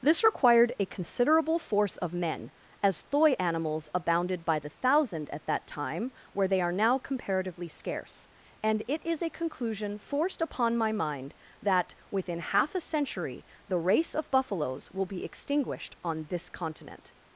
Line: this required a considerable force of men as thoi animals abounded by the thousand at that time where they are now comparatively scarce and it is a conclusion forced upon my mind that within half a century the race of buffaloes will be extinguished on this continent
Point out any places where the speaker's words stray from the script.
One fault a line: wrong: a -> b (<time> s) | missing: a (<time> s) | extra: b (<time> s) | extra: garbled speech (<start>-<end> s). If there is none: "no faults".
no faults